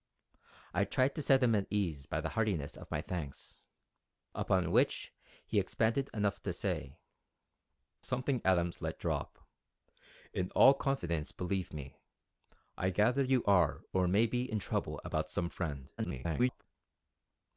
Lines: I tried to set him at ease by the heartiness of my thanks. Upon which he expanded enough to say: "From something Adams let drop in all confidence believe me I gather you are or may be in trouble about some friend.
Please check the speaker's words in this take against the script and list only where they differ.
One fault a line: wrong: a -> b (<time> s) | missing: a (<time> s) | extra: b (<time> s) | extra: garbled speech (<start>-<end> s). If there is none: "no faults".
missing: From (7.0 s)
extra: garbled speech (16.0-16.6 s)